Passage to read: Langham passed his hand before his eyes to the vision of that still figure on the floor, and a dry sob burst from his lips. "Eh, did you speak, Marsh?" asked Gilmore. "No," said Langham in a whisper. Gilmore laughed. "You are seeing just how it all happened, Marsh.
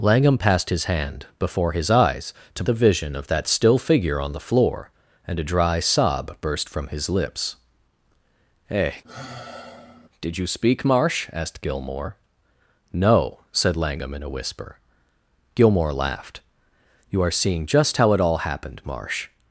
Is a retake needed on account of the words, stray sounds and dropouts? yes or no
yes